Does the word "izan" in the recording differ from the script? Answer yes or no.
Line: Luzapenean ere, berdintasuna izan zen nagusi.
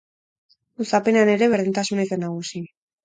yes